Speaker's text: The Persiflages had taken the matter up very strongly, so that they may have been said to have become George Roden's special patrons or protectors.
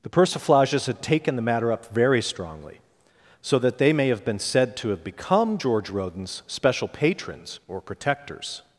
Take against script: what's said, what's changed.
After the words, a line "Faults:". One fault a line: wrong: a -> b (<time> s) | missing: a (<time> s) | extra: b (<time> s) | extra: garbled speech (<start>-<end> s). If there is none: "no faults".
The Persiflages had taken the matter up very strongly, so that they may have been said to have become George Roden's special patrons or protectors.
Faults:
no faults